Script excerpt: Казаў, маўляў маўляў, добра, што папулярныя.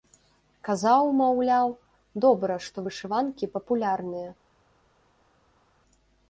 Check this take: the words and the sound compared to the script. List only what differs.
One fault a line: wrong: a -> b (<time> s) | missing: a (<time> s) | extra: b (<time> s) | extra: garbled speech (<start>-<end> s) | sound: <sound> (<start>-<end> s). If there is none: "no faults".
missing: маўляў (1.7 s)
extra: вышыванкі (2.9 s)